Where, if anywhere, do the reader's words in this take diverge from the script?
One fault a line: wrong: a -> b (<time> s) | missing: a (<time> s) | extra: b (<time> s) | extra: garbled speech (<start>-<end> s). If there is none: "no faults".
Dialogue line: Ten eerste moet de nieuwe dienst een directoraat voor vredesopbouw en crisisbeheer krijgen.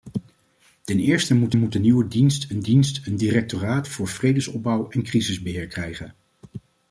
extra: moet (1.5 s)
extra: dienst een (2.6 s)